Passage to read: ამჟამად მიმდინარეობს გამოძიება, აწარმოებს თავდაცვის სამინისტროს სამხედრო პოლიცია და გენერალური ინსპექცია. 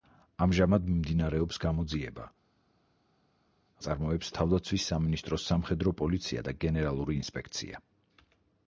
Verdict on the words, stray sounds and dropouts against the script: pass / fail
pass